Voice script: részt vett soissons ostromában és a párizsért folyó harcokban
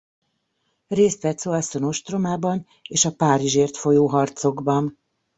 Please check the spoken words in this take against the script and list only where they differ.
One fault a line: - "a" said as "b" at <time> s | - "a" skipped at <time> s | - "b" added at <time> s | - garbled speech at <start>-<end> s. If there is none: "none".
none